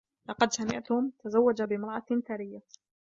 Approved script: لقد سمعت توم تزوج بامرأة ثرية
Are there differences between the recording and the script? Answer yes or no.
no